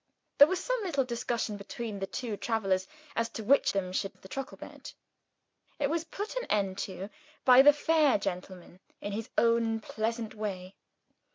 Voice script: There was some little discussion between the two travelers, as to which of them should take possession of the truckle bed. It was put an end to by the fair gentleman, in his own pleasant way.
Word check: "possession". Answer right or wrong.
wrong